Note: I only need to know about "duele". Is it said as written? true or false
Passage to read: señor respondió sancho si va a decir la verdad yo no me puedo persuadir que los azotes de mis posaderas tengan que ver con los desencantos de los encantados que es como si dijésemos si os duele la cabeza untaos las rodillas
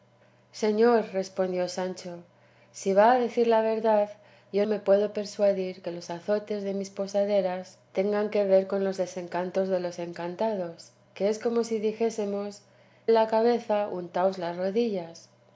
false